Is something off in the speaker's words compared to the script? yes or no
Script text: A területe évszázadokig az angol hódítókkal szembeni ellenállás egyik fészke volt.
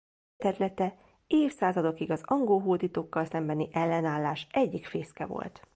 no